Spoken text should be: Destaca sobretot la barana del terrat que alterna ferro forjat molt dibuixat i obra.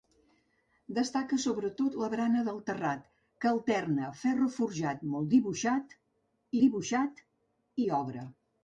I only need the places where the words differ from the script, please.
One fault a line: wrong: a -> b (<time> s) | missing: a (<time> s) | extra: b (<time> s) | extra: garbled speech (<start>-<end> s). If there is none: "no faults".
extra: dibuixat (6.6 s)